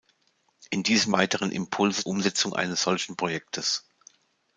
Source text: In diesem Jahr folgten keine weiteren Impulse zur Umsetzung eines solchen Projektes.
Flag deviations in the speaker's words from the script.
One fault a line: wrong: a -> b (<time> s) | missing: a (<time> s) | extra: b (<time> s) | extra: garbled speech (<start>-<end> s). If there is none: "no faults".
missing: Jahr folgten keine (1.1 s)
missing: zur (2.1 s)